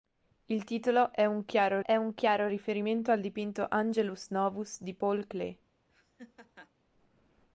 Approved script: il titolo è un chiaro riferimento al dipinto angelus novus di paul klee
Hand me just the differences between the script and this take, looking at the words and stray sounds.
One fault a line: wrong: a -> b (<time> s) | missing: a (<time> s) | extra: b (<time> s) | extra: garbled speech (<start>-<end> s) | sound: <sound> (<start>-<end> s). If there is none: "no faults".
extra: è un chiaro (1.8 s)
sound: laugh (5.9-6.7 s)